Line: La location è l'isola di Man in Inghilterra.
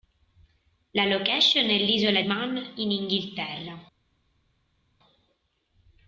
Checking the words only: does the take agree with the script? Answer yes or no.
no